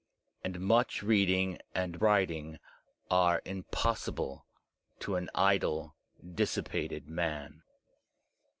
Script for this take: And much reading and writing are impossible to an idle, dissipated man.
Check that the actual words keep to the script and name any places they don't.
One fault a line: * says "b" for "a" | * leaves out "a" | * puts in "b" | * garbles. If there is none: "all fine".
all fine